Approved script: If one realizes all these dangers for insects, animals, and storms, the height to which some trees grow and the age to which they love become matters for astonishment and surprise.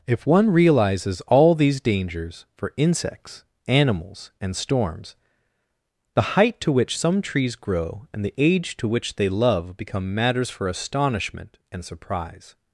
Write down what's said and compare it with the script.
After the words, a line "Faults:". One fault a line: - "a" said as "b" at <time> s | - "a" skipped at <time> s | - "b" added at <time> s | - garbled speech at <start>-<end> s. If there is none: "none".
If one realizes all these dangers for insects, animals, and storms, the height to which some trees grow and the age to which they love become matters for astonishment and surprise.
Faults:
none